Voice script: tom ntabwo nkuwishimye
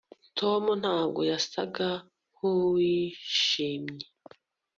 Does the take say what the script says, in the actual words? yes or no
no